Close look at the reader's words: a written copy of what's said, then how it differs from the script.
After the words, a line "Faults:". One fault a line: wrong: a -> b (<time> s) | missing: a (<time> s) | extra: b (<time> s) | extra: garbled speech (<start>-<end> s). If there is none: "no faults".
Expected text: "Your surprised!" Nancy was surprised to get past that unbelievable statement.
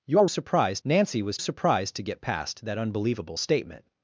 "Your surprised!" Nancy was surprised to get past that unbelievable statement.
Faults:
no faults